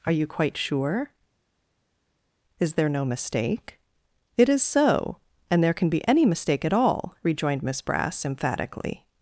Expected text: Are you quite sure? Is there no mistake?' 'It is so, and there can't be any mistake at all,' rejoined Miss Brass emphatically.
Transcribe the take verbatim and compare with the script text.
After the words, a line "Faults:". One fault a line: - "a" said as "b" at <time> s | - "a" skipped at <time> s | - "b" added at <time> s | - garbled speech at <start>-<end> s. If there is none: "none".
Are you quite sure? Is there no mistake?' 'It is so, and there can be any mistake at all,' rejoined Miss Brass emphatically.
Faults:
- "can't" said as "can" at 5.7 s